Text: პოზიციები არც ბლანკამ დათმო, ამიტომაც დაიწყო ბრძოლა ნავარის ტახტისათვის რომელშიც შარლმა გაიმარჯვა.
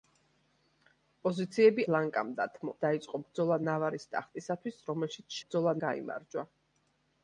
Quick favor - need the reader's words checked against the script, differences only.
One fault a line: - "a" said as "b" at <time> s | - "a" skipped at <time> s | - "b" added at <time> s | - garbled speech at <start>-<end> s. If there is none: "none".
- "არც" skipped at 1.8 s
- "ამიტომაც" skipped at 2.7 s
- "შარლმა" said as "ბრძოლა" at 5.4 s